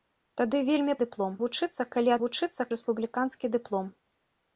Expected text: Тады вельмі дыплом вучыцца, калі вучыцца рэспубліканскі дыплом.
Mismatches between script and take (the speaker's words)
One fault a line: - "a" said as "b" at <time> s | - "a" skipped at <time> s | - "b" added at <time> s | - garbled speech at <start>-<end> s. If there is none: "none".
none